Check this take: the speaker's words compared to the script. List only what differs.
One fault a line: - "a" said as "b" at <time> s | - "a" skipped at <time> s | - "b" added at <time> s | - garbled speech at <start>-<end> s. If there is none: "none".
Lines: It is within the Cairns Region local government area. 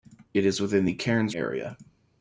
- "Region local government" skipped at 1.3 s